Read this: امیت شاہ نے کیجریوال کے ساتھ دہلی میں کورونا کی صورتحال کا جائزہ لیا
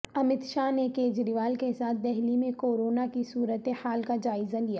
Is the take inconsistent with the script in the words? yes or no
no